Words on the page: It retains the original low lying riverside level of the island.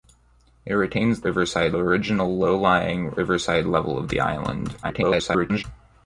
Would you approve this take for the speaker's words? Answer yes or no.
no